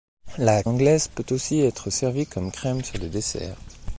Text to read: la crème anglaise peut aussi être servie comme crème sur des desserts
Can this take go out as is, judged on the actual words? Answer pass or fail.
fail